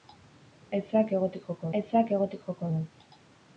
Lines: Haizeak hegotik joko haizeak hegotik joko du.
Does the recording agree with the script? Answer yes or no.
yes